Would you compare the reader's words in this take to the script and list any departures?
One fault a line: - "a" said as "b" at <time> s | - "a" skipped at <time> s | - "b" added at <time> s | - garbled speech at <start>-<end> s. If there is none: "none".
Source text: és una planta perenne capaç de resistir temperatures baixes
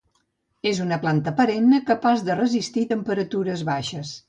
none